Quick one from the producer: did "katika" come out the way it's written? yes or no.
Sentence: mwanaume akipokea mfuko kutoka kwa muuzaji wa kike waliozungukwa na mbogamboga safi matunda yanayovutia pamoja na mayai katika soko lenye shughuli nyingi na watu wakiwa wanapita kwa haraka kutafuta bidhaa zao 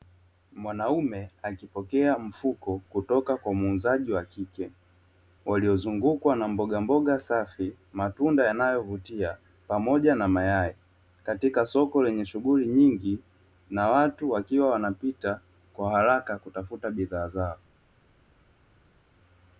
yes